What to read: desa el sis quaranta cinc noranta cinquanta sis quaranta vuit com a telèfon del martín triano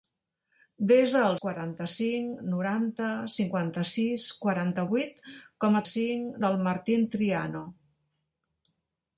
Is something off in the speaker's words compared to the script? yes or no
yes